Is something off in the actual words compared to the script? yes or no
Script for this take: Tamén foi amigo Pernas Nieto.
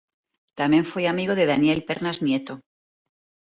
yes